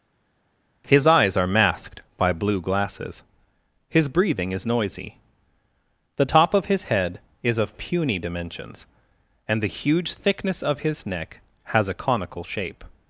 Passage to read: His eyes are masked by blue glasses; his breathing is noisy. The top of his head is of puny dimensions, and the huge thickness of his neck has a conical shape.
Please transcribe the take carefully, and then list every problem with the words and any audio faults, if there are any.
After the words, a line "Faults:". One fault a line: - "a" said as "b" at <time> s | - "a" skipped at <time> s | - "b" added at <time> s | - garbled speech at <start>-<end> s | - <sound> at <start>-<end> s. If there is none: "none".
His eyes are masked by blue glasses; his breathing is noisy. The top of his head is of puny dimensions, and the huge thickness of his neck has a conical shape.
Faults:
none